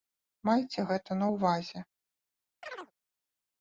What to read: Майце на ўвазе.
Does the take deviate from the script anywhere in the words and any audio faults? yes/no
yes